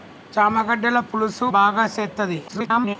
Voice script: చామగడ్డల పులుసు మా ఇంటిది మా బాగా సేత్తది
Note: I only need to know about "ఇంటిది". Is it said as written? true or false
false